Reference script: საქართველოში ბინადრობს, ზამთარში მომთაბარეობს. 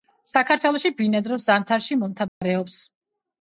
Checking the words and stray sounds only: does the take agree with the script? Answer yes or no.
no